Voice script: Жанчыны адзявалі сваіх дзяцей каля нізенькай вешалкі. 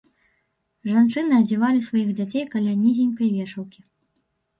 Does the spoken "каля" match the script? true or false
true